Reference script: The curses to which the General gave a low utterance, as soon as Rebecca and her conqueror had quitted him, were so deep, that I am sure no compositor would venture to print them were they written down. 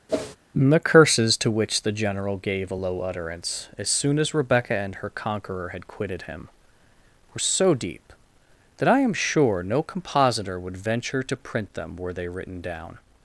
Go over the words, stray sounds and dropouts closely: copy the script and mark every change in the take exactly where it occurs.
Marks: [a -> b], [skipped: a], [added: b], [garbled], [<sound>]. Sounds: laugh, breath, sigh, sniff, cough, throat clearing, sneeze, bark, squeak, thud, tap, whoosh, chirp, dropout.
[whoosh] The curses to which the General gave a low utterance, as soon as Rebecca and her conqueror had quitted him, were so deep, that I am sure no compositor would venture to print them were they written down.